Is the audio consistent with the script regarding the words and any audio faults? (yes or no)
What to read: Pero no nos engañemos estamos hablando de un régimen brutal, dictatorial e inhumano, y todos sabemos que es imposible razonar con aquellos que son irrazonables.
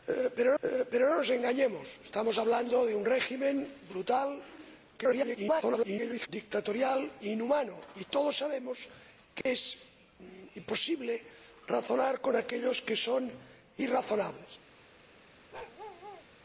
no